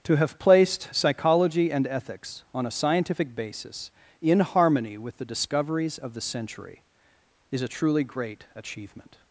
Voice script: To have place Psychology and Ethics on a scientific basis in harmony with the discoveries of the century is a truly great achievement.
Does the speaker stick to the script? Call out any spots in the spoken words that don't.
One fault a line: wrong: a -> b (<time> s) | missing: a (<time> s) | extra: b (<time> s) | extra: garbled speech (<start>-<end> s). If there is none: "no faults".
wrong: place -> placed (0.4 s)